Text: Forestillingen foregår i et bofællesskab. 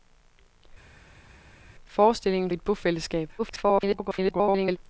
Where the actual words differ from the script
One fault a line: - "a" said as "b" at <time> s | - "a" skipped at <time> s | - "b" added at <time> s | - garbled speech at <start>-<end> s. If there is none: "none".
- "foregår" skipped at 2.5 s
- garbled speech at 3.4-4.8 s